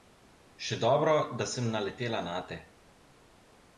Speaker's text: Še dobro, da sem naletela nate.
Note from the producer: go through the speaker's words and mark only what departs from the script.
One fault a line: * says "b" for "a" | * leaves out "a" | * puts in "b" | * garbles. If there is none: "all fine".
all fine